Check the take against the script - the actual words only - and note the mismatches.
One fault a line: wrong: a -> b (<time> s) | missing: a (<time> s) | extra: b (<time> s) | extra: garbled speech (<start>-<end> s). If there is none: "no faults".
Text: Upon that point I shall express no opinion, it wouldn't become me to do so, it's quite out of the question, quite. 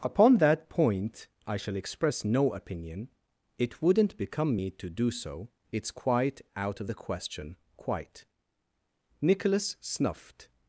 extra: Nicholas snuffed (9.2 s)